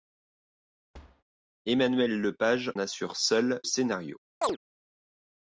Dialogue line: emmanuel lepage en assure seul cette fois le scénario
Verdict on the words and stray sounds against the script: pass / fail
fail